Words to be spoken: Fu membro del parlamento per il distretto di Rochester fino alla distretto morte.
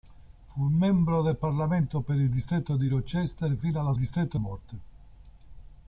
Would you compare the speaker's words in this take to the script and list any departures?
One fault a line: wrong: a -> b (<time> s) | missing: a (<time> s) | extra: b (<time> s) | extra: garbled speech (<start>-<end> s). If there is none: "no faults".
no faults